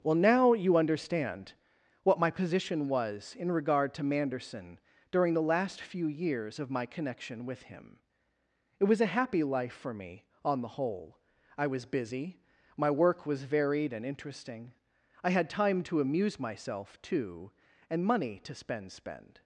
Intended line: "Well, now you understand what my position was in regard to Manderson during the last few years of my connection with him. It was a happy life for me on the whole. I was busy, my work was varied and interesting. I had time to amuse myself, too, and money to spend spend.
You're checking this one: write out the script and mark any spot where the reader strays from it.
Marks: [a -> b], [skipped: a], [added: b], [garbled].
"Well, now you understand what my position was in regard to Manderson during the last few years of my connection with him. It was a happy life for me on the whole. I was busy, my work was varied and interesting. I had time to amuse myself, too, and money to spend spend.